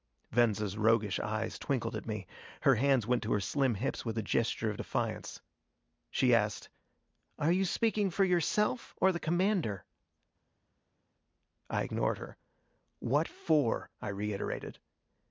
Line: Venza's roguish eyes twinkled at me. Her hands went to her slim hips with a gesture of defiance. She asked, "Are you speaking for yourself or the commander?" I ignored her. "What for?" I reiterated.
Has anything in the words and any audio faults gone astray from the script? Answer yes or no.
no